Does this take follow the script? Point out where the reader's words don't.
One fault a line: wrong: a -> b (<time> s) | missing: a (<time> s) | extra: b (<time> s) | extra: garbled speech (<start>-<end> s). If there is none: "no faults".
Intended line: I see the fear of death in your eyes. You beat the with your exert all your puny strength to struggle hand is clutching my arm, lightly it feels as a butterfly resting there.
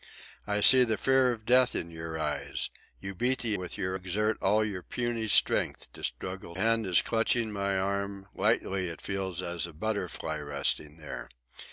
no faults